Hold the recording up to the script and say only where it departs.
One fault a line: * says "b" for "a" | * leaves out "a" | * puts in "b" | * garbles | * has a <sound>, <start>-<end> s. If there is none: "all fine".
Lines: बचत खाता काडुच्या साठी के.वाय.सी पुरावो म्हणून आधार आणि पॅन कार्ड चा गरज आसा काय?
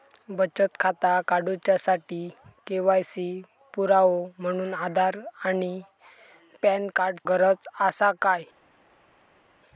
* leaves out "चा"